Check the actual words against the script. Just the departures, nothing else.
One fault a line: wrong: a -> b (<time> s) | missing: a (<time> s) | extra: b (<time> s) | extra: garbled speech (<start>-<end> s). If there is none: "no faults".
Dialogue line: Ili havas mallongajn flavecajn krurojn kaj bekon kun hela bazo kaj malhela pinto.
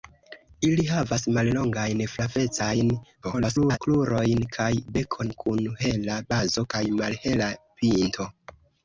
extra: garbled speech (3.2-3.8 s)